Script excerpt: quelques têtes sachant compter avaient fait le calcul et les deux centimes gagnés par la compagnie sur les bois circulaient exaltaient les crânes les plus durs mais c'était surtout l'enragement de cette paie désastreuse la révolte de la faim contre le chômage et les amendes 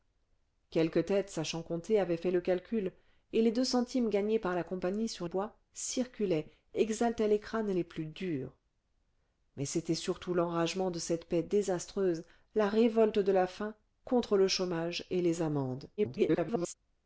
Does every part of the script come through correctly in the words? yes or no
no